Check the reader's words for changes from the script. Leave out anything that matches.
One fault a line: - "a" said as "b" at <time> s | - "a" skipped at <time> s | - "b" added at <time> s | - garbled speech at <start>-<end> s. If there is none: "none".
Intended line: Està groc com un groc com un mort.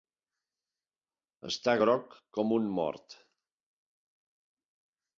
- "groc com un" skipped at 2.7 s